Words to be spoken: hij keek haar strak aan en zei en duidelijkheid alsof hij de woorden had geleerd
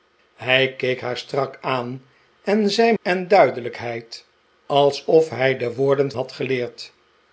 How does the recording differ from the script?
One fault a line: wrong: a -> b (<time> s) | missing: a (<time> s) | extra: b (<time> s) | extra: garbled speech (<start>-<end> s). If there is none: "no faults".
no faults